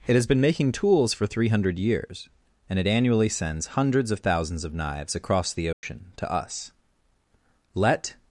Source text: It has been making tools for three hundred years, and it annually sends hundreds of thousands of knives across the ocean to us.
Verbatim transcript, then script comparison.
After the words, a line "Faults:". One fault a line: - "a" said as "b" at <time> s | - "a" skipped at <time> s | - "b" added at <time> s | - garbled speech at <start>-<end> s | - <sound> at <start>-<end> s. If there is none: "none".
It has been making tools for three hundred years, and it annually sends hundreds of thousands of knives across the ocean to us. Let
Faults:
- dropout at 5.7-5.8 s
- "Let" added at 7.8 s